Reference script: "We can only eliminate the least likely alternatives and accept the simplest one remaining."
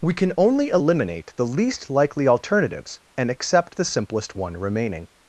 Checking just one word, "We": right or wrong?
right